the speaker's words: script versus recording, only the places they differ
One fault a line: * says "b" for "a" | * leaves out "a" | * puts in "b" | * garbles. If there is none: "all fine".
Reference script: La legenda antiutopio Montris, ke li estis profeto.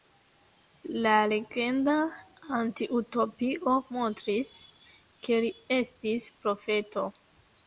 all fine